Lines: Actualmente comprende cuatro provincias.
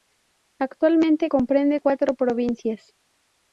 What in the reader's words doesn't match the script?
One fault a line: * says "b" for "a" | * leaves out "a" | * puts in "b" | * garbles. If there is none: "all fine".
all fine